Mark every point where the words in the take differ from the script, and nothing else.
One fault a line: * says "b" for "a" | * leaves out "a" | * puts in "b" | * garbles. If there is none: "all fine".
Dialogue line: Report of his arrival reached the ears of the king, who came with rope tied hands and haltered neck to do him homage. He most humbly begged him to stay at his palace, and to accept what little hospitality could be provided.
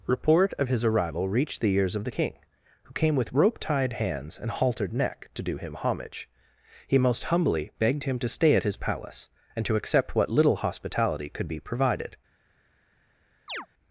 all fine